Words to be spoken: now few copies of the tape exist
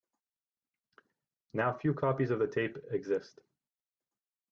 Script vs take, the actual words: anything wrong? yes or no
no